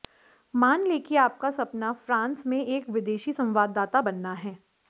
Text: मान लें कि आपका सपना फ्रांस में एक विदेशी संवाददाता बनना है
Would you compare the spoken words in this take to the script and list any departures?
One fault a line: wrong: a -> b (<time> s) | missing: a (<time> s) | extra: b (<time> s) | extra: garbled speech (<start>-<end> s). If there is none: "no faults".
no faults